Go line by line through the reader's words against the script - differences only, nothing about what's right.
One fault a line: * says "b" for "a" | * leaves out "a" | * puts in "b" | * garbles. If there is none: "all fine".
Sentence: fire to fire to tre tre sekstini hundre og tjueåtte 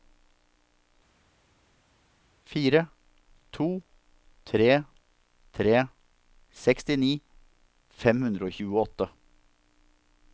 * leaves out "fire to"
* puts in "fem"